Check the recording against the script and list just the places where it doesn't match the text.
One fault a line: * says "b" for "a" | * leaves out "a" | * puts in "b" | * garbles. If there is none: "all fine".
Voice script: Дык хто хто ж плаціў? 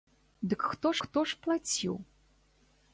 all fine